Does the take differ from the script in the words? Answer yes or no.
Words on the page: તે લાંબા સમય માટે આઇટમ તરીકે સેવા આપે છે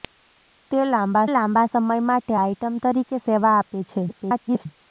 yes